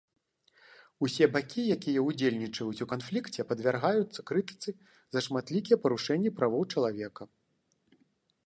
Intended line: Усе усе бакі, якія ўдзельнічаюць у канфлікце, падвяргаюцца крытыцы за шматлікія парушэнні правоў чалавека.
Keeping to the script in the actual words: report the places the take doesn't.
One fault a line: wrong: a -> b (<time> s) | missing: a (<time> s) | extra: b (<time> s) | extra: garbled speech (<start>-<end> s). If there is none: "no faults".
missing: усе (1.2 s)